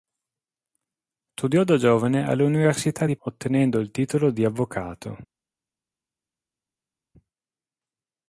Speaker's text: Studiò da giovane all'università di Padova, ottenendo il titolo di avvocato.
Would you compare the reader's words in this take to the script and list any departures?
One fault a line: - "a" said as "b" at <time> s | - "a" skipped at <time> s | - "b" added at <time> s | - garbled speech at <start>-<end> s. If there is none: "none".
- "Padova" skipped at 3.2 s